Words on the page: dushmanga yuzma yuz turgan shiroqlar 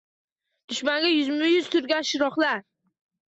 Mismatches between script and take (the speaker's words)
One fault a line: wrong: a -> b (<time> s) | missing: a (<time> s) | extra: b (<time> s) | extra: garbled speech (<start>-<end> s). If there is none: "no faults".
no faults